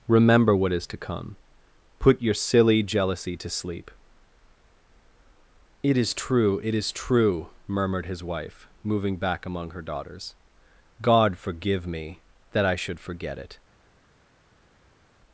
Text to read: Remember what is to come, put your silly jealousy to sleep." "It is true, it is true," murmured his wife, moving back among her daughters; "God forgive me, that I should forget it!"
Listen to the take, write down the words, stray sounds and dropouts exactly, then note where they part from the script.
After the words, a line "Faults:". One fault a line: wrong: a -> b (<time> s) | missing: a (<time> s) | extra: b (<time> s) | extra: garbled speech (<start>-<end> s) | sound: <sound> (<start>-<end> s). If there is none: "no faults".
Remember what is to come, put your silly jealousy to sleep." "It is true, it is true," murmured his wife, moving back among her daughters; "God forgive me, that I should forget it!"
Faults:
no faults